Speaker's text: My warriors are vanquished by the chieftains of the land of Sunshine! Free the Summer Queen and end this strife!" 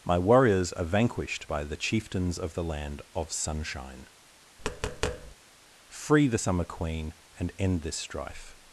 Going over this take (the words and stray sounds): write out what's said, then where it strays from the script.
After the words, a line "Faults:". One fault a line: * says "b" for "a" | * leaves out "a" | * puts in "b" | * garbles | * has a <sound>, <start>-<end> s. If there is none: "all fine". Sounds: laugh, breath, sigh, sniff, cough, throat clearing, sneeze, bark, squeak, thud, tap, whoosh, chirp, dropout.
My warriors are vanquished by the chieftains of the land of Sunshine! Free the Summer Queen and end this strife!"
Faults:
* has a tap, 4.6-5.4 s